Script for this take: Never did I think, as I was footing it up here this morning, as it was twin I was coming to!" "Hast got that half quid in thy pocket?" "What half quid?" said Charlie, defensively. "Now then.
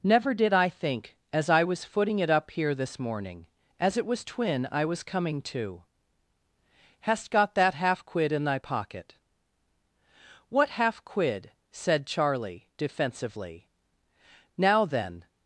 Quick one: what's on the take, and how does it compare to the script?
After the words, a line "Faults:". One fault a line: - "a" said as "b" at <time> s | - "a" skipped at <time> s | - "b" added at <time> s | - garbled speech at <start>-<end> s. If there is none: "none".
Never did I think, as I was footing it up here this morning, as it was twin I was coming to!" "Hast got that half quid in thy pocket?" "What half quid?" said Charlie, defensively. "Now then.
Faults:
none